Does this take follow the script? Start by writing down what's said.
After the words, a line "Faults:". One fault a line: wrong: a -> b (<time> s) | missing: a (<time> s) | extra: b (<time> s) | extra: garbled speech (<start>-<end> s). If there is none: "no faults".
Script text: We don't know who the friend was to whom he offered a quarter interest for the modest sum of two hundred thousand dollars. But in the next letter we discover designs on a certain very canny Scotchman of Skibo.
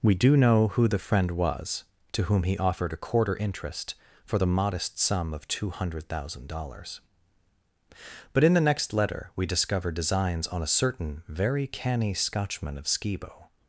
We do know who the friend was to whom he offered a quarter interest for the modest sum of two hundred thousand dollars. But in the next letter we discover designs on a certain very canny Scotchman of Skibo.
Faults:
wrong: don't -> do (0.1 s)